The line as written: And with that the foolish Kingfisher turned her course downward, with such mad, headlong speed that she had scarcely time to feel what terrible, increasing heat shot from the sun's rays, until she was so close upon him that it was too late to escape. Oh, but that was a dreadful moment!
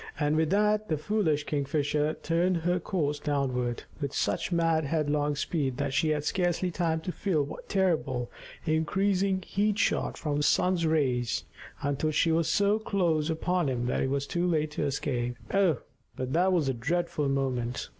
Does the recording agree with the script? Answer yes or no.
yes